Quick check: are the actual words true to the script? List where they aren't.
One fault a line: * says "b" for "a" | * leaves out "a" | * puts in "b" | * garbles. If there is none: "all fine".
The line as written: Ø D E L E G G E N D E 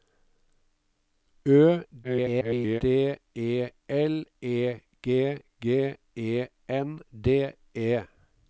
* garbles